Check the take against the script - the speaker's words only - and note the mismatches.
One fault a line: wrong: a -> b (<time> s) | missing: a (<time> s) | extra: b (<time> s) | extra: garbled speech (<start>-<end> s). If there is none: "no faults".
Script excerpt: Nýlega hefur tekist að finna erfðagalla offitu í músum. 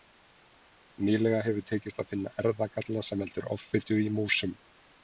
extra: sem veldur (3.1 s)